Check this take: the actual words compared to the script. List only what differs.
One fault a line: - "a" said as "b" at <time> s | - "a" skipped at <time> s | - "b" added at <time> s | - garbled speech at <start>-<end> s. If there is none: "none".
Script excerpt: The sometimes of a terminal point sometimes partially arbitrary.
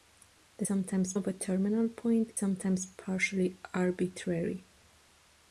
none